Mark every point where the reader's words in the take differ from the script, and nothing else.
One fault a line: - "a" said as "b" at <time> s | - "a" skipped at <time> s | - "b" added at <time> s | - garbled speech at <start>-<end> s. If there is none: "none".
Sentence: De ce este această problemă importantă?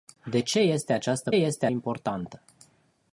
- "problemă" said as "este" at 1.3 s